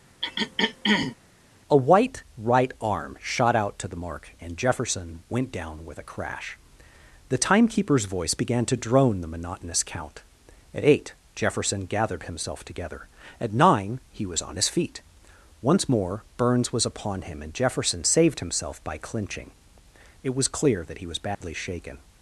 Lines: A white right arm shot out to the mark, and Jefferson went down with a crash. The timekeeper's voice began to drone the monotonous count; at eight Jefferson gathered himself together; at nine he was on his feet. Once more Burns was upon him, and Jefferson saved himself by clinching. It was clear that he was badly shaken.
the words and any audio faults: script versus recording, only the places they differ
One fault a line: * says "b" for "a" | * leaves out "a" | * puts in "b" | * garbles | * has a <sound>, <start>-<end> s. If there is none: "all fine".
* has a throat clearing, 0.2-1.2 s
* has a dropout, 21.3-21.4 s